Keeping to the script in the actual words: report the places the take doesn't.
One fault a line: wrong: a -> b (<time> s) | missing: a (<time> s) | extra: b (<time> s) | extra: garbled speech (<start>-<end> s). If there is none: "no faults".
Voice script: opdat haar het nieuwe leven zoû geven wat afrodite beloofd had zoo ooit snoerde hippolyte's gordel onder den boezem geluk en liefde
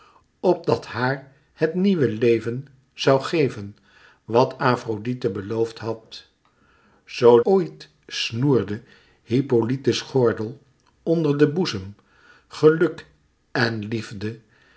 no faults